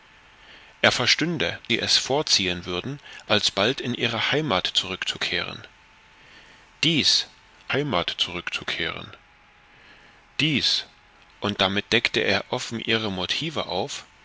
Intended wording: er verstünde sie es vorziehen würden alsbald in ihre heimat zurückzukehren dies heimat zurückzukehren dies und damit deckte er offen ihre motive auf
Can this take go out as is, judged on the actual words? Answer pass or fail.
pass